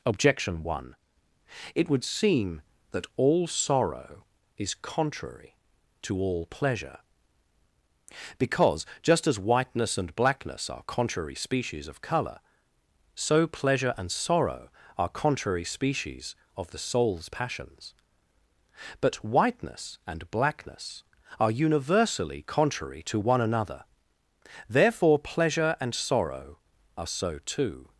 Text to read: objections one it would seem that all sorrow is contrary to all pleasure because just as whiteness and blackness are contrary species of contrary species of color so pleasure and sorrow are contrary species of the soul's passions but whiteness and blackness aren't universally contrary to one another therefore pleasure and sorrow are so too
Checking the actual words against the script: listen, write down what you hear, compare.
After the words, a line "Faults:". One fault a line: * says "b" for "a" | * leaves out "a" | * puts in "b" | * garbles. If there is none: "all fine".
objection one it would seem that all sorrow is contrary to all pleasure because just as whiteness and blackness are contrary species of color so pleasure and sorrow are contrary species of the soul's passions but whiteness and blackness are universally contrary to one another therefore pleasure and sorrow are so too
Faults:
* says "objection" for "objections"
* leaves out "contrary species of"
* says "are" for "aren't"